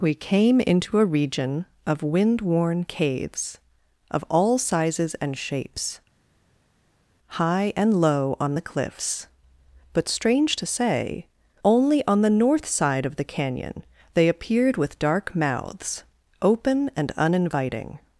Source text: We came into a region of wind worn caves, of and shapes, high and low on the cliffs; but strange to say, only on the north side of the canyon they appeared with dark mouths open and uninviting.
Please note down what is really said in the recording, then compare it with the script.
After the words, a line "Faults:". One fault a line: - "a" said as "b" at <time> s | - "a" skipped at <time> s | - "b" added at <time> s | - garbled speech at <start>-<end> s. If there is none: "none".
We came into a region of wind worn caves, of all sizes and shapes, high and low on the cliffs; but strange to say, only on the north side of the canyon they appeared with dark mouths open and uninviting.
Faults:
- "all sizes" added at 4.3 s